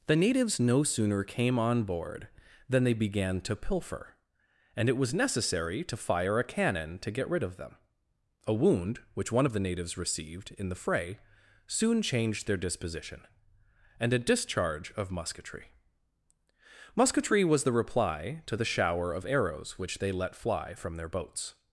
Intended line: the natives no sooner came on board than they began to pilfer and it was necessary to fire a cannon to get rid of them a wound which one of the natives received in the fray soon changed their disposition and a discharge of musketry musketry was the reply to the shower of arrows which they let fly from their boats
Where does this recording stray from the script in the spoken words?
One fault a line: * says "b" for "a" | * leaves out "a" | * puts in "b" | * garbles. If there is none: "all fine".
all fine